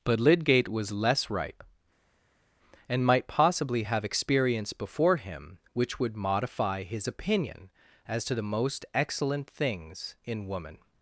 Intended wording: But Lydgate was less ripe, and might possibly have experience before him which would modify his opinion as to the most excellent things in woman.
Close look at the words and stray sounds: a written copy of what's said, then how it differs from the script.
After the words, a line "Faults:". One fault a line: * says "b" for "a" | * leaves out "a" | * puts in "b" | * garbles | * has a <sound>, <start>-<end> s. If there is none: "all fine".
But Lydgate was less ripe, and might possibly have experience before him which would modify his opinion as to the most excellent things in woman.
Faults:
all fine